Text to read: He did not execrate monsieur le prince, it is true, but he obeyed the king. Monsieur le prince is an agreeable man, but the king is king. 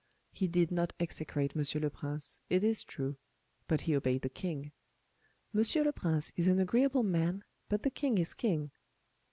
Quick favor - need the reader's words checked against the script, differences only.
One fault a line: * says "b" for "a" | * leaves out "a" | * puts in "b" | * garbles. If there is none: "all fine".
all fine